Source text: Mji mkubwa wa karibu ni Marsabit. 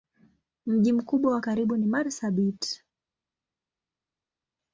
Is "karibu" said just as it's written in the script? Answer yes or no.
yes